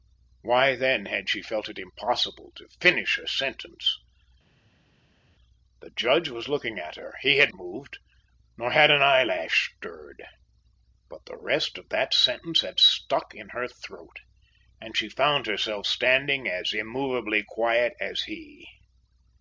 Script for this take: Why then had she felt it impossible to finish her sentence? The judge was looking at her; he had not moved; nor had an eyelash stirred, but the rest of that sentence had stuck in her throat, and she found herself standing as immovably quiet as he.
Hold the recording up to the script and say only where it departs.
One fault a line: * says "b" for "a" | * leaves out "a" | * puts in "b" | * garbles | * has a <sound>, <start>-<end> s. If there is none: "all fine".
* leaves out "not"